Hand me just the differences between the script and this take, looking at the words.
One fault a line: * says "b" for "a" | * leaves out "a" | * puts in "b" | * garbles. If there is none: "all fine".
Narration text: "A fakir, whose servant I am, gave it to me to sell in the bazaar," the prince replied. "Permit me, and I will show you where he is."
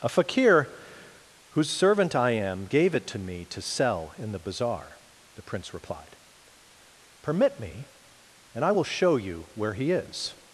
all fine